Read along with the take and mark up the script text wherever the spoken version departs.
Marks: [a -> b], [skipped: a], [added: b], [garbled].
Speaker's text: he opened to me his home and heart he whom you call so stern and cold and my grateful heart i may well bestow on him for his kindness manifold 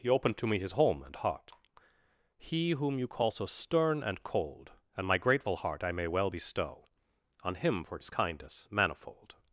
he opened to me his home and heart he whom you call so stern and cold and my grateful heart i may well bestow on him for his kindness manifold